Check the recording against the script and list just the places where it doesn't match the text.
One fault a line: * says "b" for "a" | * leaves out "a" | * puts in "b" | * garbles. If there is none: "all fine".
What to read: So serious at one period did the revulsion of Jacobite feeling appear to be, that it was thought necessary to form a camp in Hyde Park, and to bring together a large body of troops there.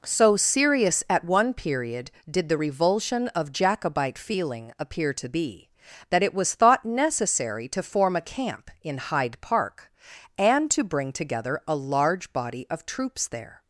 all fine